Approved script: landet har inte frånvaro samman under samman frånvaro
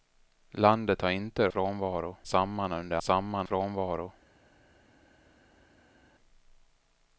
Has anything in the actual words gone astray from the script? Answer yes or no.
no